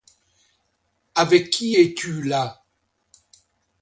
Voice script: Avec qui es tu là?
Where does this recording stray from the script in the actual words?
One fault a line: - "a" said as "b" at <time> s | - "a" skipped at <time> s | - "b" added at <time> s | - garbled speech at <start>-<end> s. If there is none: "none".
none